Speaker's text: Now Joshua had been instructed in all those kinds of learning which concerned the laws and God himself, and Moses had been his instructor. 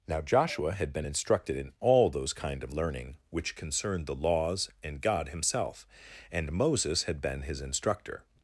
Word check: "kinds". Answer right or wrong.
wrong